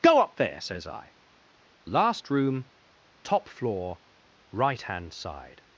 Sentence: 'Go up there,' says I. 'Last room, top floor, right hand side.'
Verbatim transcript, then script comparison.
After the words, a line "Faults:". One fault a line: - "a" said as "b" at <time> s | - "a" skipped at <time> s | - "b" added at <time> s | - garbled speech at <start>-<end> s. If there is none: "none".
'Go up there,' says I. 'Last room, top floor, right hand side.'
Faults:
none